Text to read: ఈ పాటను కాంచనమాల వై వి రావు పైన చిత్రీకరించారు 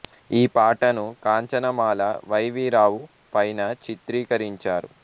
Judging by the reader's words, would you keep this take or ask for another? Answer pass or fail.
pass